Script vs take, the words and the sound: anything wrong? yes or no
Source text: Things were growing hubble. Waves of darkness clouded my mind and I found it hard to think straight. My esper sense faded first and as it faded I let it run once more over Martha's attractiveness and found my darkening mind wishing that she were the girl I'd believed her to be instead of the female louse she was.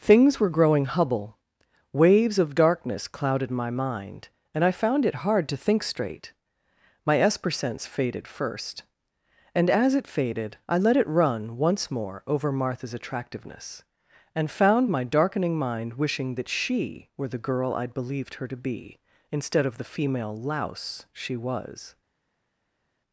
no